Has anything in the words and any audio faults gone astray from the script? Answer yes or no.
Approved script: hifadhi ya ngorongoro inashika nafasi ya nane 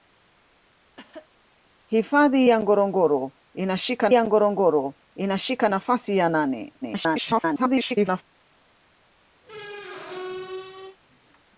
yes